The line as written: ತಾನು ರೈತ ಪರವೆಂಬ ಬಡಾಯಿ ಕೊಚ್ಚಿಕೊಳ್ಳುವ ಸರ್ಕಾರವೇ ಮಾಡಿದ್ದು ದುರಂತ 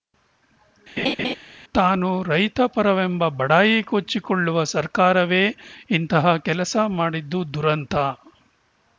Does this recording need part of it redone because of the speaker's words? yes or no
yes